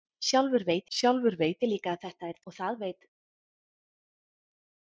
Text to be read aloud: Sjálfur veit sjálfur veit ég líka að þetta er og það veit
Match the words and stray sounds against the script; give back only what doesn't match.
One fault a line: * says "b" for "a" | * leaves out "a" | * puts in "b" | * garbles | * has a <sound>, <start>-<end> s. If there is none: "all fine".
all fine